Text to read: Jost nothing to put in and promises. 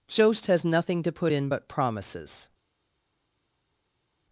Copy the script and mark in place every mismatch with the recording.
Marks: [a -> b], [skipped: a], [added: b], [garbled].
Jost [added: has] nothing to put in [and -> but] promises.